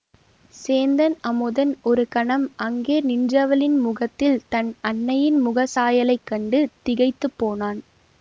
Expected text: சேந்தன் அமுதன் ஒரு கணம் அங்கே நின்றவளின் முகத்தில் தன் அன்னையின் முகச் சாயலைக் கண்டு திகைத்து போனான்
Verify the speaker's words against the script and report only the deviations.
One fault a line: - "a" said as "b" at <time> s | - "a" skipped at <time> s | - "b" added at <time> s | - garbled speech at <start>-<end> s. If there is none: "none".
none